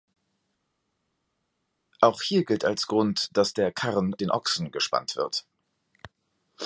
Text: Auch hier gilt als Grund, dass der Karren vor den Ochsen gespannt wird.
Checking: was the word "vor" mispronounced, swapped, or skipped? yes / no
yes